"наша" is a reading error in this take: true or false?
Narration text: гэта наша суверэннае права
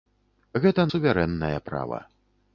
true